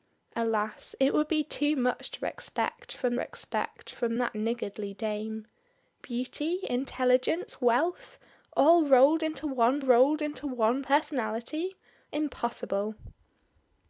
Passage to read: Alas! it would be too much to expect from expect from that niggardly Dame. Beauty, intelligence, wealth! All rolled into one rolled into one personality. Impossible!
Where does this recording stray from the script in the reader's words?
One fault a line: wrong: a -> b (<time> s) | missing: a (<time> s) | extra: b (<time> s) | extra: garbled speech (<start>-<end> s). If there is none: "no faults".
no faults